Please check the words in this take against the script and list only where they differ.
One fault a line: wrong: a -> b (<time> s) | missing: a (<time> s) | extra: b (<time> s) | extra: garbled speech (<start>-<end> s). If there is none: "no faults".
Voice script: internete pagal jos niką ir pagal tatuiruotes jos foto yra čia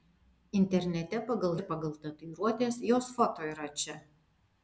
missing: jos niką (1.5 s)